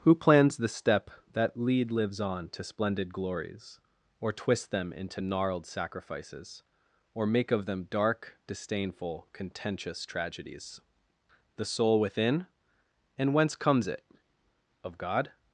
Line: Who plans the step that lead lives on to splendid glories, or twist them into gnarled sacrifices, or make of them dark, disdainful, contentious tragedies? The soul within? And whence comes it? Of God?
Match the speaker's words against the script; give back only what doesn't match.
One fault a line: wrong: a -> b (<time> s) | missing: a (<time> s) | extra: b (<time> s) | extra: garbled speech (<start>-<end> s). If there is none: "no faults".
no faults